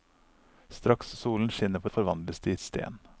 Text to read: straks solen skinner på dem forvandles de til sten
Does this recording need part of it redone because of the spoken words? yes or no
yes